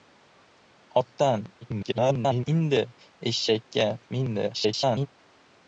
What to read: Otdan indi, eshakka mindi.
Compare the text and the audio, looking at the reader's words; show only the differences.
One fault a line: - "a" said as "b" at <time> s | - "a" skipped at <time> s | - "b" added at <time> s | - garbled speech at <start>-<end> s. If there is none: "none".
- garbled speech at 1.6-2.5 s
- garbled speech at 4.5-5.1 s